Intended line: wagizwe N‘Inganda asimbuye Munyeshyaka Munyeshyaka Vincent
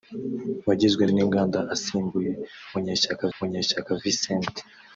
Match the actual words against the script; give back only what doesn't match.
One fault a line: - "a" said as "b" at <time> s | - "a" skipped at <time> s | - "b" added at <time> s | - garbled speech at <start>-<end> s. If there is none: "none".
none